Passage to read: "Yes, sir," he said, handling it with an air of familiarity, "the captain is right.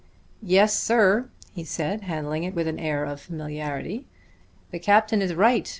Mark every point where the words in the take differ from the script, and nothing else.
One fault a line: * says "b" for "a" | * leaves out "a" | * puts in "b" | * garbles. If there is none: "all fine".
all fine